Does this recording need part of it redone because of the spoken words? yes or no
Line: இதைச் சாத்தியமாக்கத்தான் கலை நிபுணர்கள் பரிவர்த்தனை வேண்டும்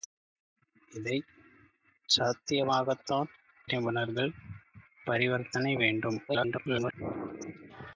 yes